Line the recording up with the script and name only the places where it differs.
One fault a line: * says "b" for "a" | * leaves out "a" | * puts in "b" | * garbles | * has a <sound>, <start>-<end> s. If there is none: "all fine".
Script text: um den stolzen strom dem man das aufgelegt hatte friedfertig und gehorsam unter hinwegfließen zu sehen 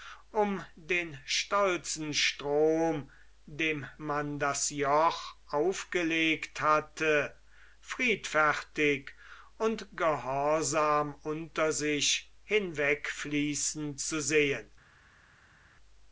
* puts in "joch"
* puts in "sich"